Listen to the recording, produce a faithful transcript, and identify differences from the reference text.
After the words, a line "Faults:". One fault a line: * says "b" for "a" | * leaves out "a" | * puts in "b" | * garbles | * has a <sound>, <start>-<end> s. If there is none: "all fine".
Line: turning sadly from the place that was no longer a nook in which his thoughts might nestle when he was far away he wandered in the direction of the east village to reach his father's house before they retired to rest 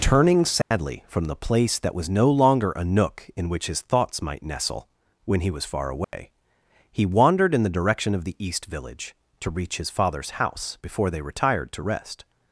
turning sadly from the place that was no longer a nook in which his thoughts might nestle when he was far away he wandered in the direction of the east village to reach his father's house before they retired to rest
Faults:
* has a dropout, 0.6-0.7 s
* has a dropout, 6.0-6.1 s